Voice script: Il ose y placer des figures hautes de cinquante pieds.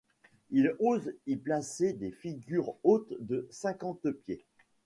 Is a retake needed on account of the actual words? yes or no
no